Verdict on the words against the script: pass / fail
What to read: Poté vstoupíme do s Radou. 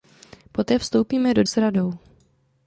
pass